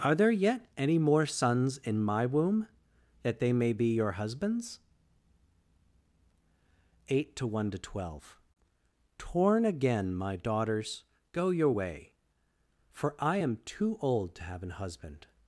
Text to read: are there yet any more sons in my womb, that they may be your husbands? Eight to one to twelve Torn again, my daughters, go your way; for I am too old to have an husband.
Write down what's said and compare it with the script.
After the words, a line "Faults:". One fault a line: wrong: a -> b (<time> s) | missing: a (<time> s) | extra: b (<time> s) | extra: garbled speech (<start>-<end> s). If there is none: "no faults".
are there yet any more sons in my womb, that they may be your husbands? Eight to one to twelve Torn again, my daughters, go your way; for I am too old to have an husband.
Faults:
no faults